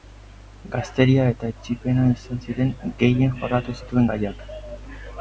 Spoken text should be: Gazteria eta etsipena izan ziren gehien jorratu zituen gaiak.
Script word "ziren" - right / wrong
right